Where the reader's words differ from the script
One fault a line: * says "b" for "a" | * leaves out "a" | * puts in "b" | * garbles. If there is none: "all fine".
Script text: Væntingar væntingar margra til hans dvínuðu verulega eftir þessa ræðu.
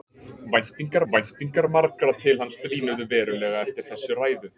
all fine